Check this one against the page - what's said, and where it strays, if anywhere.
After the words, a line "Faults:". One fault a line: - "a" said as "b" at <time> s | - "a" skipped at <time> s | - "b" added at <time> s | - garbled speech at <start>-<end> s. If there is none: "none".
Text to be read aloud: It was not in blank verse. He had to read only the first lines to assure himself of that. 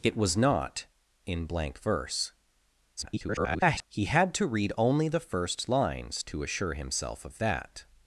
It was not in blank verse. [garbled] He had to read only the first lines to assure himself of that.
Faults:
- garbled speech at 3.0-3.9 s